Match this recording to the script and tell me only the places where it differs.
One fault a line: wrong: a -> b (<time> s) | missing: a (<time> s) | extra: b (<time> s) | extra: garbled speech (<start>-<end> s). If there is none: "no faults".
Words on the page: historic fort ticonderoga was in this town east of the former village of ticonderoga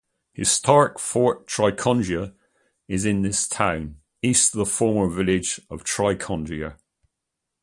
wrong: was -> is (2.9 s)